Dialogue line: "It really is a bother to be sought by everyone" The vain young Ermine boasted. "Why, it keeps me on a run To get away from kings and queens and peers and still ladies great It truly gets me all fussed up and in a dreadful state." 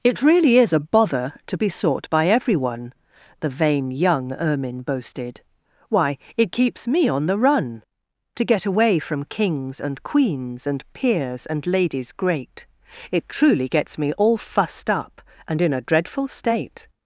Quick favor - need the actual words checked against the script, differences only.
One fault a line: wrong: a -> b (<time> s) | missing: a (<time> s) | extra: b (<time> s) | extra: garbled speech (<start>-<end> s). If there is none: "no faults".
wrong: a -> the (7.3 s)
missing: still (11.7 s)